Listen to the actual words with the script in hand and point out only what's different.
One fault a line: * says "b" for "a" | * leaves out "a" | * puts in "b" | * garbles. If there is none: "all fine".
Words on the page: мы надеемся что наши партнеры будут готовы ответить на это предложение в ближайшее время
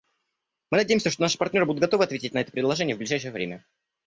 all fine